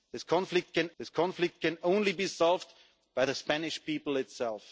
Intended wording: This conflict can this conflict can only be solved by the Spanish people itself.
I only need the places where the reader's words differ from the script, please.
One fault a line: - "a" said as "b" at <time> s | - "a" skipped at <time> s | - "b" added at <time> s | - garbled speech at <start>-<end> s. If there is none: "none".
none